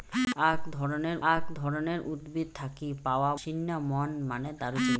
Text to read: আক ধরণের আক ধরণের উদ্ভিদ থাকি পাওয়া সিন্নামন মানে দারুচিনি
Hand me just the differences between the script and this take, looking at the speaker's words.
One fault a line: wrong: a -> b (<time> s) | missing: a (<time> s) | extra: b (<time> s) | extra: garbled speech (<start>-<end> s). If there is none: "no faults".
no faults